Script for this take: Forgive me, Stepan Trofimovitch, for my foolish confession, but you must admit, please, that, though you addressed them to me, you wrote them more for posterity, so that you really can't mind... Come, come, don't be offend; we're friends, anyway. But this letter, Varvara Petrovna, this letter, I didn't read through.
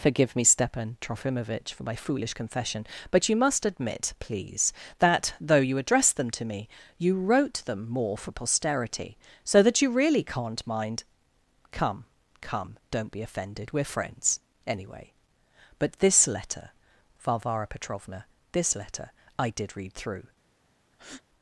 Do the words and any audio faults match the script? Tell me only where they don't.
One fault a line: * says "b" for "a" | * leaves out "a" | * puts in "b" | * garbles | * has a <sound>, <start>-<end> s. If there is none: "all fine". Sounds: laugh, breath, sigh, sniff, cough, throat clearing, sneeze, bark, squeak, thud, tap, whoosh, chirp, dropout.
* says "offended" for "offend"
* says "did" for "didn't"
* has a breath, 20.9-21.2 s